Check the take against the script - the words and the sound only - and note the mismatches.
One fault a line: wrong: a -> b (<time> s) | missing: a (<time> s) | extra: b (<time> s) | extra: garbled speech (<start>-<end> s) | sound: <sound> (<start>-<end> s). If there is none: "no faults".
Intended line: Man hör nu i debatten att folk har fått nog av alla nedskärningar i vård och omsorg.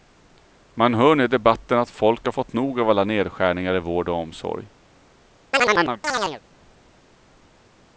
sound: chirp (5.5-6.4 s)